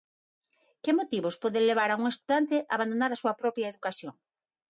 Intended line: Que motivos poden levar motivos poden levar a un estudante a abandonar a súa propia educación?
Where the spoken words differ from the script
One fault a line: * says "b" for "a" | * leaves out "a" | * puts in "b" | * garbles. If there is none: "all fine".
* leaves out "motivos poden levar"